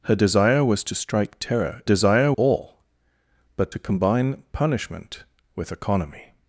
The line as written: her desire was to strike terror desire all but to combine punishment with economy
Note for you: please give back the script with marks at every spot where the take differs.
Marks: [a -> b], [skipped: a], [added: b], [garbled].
her desire was to strike terror desire all but to combine punishment with economy